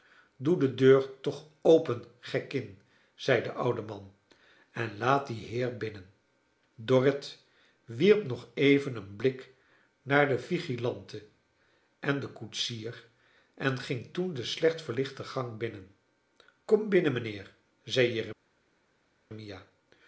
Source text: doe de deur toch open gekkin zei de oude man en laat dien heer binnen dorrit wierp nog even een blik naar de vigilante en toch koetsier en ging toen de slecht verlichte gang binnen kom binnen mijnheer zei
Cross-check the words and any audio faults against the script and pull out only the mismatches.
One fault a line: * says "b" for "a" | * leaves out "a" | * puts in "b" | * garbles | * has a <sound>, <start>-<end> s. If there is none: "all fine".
* says "den" for "toch"